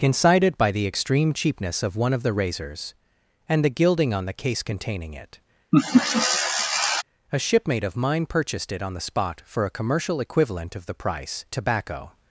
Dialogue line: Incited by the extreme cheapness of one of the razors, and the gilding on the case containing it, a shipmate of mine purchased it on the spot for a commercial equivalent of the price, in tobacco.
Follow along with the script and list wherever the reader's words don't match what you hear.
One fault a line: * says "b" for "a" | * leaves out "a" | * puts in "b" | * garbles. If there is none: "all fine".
* leaves out "in"